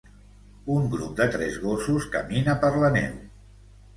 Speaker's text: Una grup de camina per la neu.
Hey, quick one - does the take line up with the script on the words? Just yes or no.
no